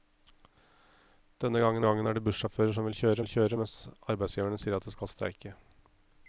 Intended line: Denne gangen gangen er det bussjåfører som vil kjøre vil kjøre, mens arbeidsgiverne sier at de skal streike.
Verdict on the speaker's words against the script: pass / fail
pass